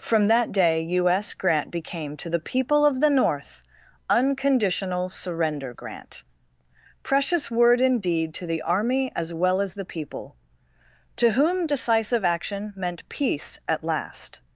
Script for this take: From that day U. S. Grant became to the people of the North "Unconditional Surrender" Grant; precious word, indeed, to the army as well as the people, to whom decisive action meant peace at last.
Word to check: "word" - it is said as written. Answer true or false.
true